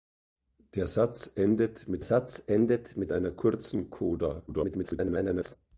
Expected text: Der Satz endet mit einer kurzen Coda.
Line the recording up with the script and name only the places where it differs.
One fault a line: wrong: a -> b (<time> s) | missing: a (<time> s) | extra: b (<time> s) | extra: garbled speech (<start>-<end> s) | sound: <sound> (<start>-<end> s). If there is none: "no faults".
extra: Satz endet mit (2.0 s)
extra: garbled speech (4.5-5.6 s)